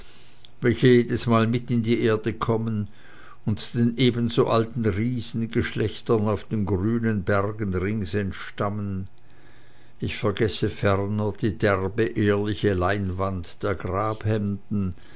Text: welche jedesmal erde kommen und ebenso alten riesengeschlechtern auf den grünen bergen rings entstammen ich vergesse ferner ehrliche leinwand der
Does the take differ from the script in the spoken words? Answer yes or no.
yes